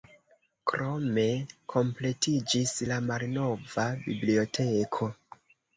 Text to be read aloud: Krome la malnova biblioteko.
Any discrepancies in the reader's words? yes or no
yes